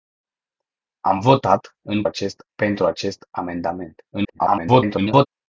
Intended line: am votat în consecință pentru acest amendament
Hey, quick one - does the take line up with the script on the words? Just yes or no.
no